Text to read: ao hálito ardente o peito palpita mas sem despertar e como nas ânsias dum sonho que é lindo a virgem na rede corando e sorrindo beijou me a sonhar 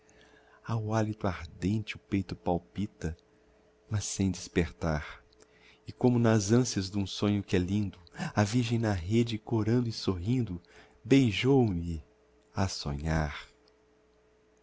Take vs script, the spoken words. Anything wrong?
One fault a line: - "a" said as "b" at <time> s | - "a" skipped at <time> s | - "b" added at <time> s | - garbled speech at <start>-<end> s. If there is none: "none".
none